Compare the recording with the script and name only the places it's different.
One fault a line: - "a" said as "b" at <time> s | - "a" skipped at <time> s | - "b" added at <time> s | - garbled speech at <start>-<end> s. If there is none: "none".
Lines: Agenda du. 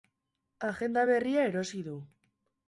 - "berria erosi" added at 1.1 s